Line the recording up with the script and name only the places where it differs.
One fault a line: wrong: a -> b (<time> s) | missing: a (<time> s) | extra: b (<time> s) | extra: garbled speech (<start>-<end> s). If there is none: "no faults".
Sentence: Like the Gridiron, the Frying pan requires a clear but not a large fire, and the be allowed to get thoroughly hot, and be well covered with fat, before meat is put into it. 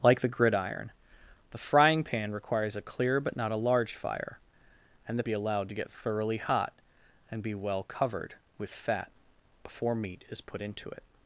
no faults